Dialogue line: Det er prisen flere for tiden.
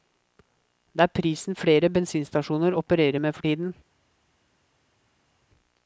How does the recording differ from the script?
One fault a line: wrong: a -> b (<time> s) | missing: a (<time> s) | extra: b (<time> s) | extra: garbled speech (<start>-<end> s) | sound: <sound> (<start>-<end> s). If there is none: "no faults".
extra: bensinstasjoner opererer med (1.9 s)